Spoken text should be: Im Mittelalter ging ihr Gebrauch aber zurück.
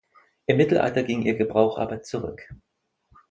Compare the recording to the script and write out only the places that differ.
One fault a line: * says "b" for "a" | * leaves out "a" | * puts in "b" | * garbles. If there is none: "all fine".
all fine